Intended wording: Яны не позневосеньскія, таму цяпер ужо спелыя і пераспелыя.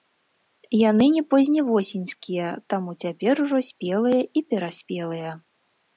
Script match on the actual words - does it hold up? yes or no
yes